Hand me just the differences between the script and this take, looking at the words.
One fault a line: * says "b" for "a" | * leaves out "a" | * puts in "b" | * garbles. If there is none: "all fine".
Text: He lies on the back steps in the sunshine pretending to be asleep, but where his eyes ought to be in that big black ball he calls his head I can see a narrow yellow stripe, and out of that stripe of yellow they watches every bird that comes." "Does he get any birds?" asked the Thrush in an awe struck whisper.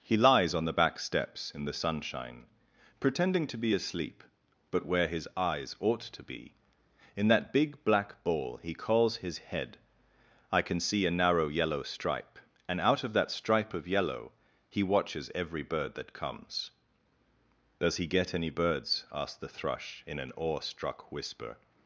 * says "he" for "they"